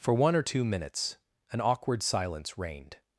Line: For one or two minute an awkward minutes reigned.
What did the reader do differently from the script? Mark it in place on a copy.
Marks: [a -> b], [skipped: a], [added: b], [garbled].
For one or two [minute -> minutes] an awkward [minutes -> silence] reigned.